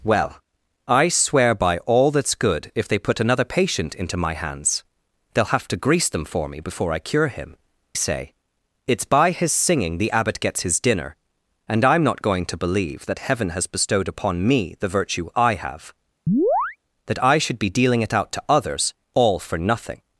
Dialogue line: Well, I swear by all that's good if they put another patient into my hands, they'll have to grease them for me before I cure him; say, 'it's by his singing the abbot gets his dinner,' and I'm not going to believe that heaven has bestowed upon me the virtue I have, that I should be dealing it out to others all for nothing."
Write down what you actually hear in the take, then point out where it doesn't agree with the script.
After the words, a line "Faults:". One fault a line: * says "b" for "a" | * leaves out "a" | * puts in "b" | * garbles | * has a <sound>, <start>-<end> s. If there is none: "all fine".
Well, I swear by all that's good if they put another patient into my hands, they'll have to grease them for me before I cure him; say, 'it's by his singing the abbot gets his dinner,' and I'm not going to believe that heaven has bestowed upon me the virtue I have, that I should be dealing it out to others all for nothing."
Faults:
* has a chirp, 16.3-16.8 s